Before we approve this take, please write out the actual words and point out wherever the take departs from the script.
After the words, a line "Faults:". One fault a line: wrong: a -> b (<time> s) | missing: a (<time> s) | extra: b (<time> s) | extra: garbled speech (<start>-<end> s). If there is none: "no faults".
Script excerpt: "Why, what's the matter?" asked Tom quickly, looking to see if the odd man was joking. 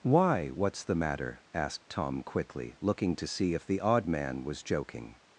"Why, what's the matter?" asked Tom quickly, looking to see if the odd man was joking.
Faults:
no faults